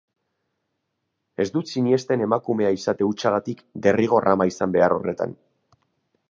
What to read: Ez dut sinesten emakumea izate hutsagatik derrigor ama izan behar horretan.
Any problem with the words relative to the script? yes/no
no